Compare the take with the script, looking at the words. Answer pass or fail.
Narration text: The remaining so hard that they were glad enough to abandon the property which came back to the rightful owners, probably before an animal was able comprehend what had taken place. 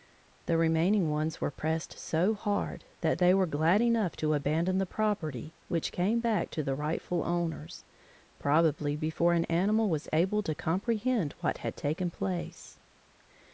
fail